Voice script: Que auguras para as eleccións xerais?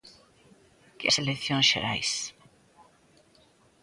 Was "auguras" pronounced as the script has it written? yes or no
no